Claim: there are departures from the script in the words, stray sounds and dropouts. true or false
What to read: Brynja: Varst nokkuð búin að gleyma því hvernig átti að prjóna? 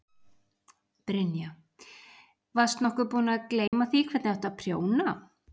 true